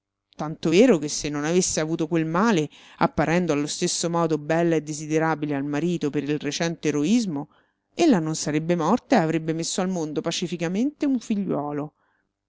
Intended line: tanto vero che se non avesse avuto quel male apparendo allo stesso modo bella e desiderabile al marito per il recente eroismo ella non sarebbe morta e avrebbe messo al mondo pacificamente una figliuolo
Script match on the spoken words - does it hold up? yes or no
no